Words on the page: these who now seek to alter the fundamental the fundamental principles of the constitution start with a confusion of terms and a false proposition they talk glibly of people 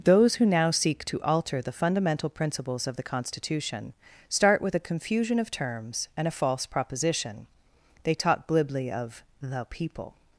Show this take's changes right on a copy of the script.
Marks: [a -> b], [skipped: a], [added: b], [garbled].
[these -> those] who now seek to alter the fundamental [skipped: the fundamental] principles of the constitution start with a confusion of terms and a false proposition they talk glibly of [added: the] people